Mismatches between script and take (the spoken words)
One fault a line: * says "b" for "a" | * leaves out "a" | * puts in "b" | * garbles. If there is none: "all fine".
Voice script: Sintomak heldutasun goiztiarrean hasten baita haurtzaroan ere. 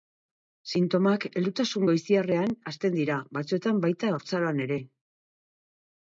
* puts in "dira batzuetan"